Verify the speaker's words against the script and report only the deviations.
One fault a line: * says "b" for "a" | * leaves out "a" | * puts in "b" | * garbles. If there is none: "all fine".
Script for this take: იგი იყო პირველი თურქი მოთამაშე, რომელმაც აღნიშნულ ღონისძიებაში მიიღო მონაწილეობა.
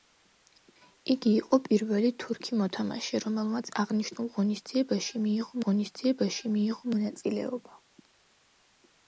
* puts in "ღონისძიებაში მიიღო"